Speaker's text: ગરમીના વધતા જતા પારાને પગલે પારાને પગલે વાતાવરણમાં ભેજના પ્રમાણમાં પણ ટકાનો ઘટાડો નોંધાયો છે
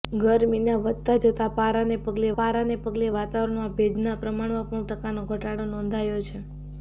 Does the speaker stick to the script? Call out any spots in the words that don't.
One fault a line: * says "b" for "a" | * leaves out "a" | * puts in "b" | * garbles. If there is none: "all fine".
all fine